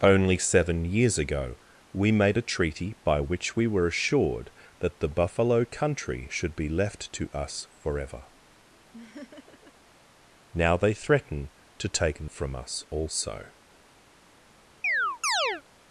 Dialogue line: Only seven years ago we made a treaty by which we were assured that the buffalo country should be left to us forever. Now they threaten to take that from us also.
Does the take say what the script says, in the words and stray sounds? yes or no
no